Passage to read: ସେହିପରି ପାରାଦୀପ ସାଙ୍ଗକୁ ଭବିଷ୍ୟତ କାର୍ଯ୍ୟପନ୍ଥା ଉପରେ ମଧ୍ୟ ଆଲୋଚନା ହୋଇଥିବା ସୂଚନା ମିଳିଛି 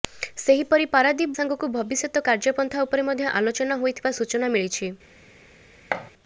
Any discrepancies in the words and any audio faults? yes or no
yes